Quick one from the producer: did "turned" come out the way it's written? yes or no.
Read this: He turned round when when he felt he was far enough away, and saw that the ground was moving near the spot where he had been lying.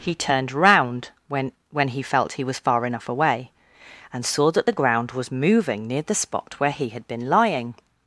yes